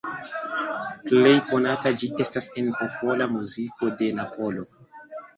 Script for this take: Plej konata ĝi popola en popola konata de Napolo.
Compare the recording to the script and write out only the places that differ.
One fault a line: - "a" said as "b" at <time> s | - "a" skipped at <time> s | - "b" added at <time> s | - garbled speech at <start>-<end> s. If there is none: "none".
- "popola" said as "estas" at 2.2 s
- "konata" said as "muziko" at 3.3 s